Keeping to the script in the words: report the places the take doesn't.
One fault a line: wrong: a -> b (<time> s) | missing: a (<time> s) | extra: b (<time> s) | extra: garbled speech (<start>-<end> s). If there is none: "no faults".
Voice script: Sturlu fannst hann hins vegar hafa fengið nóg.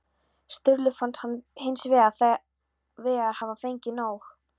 no faults